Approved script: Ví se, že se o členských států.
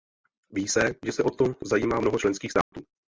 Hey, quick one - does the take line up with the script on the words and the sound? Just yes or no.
no